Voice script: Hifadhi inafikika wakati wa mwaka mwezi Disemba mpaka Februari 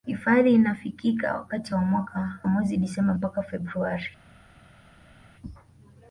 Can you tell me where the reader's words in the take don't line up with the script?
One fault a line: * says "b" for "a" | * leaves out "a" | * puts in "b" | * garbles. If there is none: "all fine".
all fine